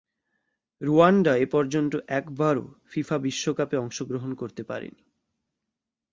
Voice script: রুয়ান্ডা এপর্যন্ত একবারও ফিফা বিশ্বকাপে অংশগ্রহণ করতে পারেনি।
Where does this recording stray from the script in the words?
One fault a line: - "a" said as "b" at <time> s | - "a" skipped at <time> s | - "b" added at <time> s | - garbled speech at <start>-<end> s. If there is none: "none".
none